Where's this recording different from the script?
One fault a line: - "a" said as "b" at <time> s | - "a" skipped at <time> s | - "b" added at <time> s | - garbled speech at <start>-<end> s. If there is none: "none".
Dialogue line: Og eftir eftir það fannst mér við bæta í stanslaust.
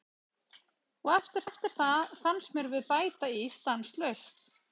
none